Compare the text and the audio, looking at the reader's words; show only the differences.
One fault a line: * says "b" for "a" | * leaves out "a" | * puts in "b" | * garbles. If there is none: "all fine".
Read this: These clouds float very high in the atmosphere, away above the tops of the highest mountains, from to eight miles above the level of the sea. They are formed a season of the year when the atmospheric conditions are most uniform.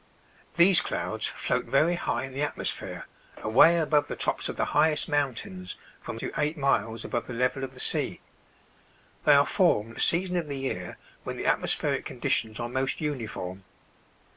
all fine